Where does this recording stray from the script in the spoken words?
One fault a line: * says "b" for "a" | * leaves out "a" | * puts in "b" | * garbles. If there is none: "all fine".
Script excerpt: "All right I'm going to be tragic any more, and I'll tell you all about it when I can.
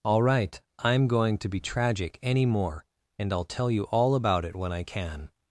all fine